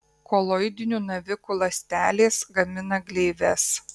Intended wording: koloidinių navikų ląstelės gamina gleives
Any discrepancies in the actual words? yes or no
no